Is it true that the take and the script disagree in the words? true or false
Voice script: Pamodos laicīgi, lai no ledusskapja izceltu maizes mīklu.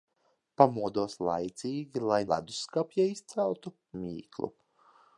true